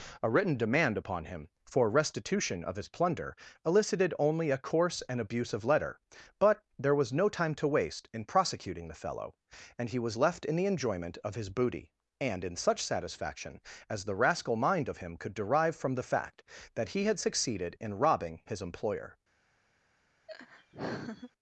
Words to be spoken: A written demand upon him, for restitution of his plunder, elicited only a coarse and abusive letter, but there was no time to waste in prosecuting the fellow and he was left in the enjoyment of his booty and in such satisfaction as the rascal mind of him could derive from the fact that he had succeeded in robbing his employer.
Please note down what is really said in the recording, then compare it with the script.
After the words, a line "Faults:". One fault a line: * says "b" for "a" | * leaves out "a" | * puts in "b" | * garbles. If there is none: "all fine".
A written demand upon him, for restitution of his plunder, elicited only a coarse and abusive letter, but there was no time to waste in prosecuting the fellow and he was left in the enjoyment of his booty and in such satisfaction as the rascal mind of him could derive from the fact that he had succeeded in robbing his employer.
Faults:
all fine